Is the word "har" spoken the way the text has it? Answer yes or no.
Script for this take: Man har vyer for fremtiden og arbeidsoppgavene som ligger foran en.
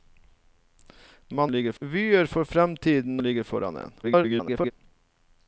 no